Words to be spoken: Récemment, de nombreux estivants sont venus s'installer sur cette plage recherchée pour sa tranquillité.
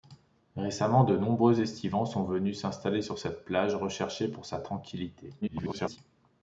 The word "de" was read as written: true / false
true